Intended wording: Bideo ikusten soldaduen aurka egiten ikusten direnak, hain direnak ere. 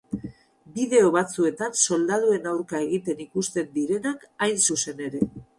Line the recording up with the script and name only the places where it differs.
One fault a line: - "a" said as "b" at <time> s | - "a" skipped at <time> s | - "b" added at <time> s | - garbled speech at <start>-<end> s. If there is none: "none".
- "ikusten" said as "batzuetan" at 1.1 s
- "direnak" said as "zuzen" at 4.7 s